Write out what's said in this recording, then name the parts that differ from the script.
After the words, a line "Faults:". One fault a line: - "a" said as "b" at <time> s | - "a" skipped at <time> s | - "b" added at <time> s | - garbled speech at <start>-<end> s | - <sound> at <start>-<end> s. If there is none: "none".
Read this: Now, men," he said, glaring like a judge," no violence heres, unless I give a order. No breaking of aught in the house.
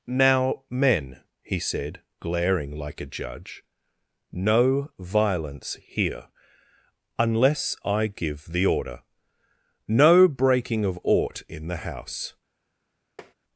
Now, men," he said, glaring like a judge," no violence here, unless I give the order. No breaking of aught in the house.
Faults:
- "heres" said as "here" at 5.8 s
- "a" said as "the" at 8.5 s
- tap at 13.2-13.3 s